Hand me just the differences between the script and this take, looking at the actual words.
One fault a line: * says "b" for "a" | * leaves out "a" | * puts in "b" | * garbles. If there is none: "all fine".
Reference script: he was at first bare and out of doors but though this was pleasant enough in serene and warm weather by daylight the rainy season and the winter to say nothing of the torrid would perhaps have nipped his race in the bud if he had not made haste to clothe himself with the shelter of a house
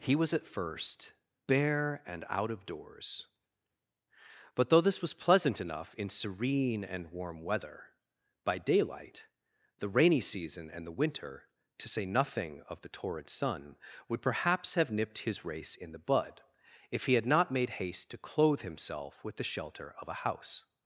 * puts in "sun"